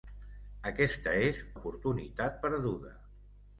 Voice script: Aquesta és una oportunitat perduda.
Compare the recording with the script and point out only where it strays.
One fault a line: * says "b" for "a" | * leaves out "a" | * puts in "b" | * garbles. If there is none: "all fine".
* leaves out "una"